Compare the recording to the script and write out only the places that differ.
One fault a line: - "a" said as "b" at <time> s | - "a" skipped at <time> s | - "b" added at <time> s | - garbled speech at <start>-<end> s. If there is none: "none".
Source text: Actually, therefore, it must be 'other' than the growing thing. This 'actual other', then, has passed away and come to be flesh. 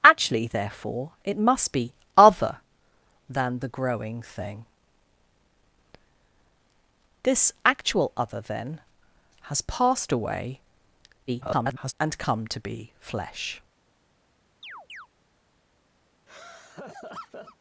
- garbled speech at 11.3-11.9 s